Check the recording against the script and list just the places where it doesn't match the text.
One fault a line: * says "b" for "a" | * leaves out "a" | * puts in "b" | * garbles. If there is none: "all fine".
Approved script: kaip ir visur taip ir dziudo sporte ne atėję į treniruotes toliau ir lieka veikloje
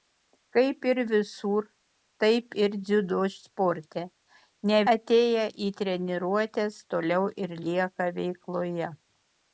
all fine